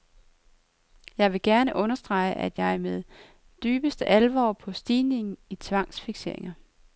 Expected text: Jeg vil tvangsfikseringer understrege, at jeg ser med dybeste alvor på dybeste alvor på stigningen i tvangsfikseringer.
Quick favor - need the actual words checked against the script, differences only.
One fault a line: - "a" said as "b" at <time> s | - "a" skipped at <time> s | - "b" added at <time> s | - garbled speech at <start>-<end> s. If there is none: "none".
- "tvangsfikseringer" said as "gerne" at 1.4 s
- "dybeste alvor på" skipped at 4.7 s